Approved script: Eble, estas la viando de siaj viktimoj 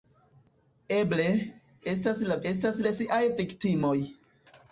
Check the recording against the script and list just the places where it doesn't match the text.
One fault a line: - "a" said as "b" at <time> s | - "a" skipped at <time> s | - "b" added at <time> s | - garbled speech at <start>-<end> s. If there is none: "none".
- "viando" said as "estas" at 2.5 s